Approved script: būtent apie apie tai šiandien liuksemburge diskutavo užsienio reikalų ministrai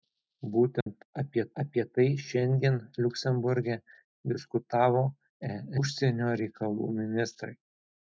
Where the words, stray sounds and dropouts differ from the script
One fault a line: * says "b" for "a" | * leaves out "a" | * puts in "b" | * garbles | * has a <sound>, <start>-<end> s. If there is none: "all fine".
* has a dropout, 0.8-0.9 s